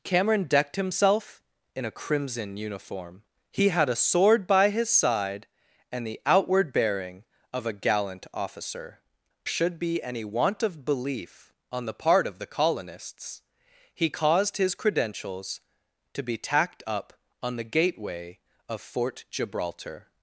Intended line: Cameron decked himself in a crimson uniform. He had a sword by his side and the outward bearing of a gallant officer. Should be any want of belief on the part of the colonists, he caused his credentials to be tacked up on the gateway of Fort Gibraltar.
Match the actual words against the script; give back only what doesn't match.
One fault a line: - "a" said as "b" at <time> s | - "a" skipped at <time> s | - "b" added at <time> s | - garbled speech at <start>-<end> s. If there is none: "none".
none